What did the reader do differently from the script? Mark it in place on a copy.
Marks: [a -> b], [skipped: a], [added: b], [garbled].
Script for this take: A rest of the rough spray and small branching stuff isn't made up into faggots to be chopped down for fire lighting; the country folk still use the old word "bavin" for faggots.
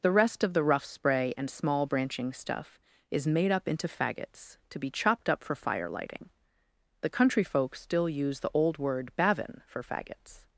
[A -> The] rest of the rough spray and small branching stuff [isn't -> is] made up into faggots to be chopped [down -> up] for fire lighting; the country folk still use the old word "bavin" for faggots.